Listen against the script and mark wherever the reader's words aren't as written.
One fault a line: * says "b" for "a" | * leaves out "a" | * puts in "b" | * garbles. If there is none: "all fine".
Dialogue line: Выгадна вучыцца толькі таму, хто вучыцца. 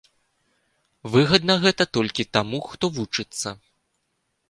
* says "гэта" for "вучыцца"